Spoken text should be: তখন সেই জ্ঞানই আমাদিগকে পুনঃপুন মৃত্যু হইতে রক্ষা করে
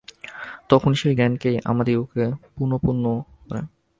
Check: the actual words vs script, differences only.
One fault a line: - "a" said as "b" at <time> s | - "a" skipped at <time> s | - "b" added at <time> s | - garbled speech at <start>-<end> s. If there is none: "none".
- "মৃত্যু হইতে রক্ষা" skipped at 3.0 s